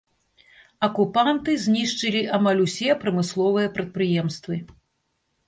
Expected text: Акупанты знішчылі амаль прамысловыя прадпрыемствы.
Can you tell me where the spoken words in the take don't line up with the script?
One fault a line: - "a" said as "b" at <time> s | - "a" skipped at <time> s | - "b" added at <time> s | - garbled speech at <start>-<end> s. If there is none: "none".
- "усе" added at 2.6 s